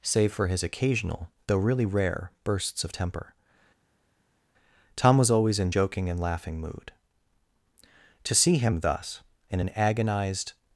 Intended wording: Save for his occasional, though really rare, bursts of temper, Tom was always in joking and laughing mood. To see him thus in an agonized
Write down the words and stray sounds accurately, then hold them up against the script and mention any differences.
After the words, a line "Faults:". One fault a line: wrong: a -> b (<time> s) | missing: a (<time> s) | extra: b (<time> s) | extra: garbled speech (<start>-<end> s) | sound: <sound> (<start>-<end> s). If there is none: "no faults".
Save for his occasional, though really rare, bursts of temper, Tom was always in joking and laughing mood. To see him thus in an agonized
Faults:
no faults